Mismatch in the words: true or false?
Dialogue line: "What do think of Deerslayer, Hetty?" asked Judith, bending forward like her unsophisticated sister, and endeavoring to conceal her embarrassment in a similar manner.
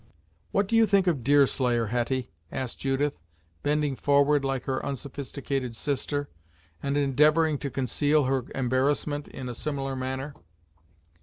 true